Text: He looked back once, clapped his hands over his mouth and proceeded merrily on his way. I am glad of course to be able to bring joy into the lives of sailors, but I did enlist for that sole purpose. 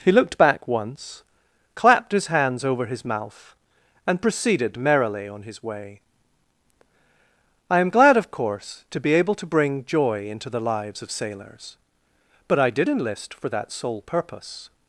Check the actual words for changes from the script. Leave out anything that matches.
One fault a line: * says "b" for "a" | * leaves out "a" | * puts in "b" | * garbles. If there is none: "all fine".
all fine